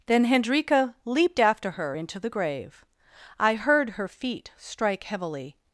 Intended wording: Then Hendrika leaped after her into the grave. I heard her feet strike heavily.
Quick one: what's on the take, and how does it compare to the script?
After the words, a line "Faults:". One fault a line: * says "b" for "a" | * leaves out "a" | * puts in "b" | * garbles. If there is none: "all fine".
Then Hendrika leaped after her into the grave. I heard her feet strike heavily.
Faults:
all fine